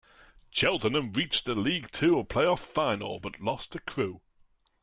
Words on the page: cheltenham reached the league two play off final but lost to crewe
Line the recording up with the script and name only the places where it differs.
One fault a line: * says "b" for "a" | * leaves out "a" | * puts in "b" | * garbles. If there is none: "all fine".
all fine